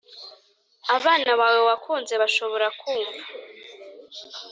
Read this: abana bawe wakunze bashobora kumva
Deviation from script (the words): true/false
false